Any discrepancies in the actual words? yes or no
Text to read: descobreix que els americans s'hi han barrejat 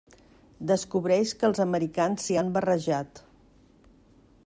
no